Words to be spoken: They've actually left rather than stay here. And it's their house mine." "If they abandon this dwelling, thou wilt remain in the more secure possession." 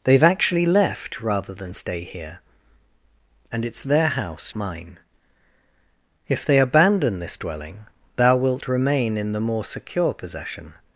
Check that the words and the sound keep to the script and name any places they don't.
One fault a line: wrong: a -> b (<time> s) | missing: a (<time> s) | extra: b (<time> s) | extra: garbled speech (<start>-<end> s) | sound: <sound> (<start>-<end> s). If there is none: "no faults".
no faults